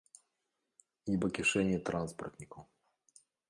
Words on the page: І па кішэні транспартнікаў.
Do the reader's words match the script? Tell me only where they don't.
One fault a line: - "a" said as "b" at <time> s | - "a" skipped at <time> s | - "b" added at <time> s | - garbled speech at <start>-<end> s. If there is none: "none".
none